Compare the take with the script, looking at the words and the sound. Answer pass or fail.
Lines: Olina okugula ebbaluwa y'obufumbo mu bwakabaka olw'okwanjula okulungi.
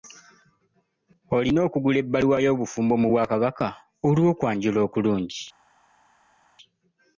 pass